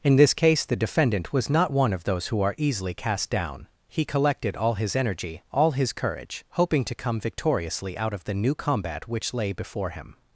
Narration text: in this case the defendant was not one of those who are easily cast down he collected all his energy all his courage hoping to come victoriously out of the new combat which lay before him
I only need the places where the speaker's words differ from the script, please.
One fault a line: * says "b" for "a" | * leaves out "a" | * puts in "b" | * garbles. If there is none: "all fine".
all fine